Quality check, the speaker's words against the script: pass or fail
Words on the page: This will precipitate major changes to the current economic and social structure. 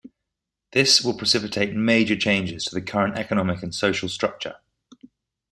pass